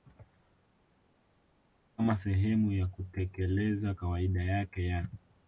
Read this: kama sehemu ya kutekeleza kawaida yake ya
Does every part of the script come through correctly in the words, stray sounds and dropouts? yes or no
yes